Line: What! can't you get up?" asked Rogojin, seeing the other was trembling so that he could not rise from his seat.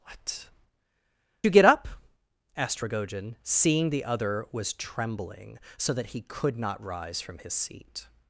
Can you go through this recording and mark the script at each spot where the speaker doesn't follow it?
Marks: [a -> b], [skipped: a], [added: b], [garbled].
What! [skipped: can't] you get up?" asked Rogojin, seeing the other was trembling so that he could not rise from his seat.